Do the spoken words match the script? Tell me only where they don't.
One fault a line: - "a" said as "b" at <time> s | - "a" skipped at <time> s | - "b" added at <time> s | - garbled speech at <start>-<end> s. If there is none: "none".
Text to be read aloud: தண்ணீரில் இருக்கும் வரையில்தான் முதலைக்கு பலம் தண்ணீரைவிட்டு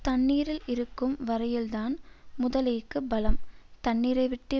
none